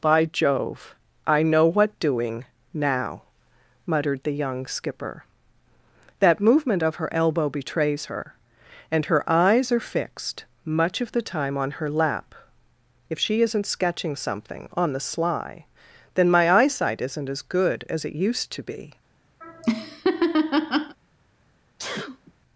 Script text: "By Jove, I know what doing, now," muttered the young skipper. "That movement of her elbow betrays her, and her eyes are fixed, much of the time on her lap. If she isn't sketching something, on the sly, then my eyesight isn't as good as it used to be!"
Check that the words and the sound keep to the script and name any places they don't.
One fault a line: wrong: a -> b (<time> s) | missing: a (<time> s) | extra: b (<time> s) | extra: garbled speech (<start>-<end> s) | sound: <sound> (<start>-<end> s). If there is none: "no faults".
sound: laugh (19.4-21.0 s)
sound: sneeze (21.8-22.3 s)